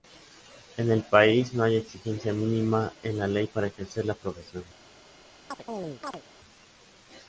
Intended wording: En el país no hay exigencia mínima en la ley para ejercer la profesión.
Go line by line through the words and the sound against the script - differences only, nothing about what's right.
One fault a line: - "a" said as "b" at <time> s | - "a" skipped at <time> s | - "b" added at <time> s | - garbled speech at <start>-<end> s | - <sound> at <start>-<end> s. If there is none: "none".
- chirp at 5.5-6.2 s